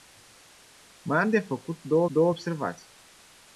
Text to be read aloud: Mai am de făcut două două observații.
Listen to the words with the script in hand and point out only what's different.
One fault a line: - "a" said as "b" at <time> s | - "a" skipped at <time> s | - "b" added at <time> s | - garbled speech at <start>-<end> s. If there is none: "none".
none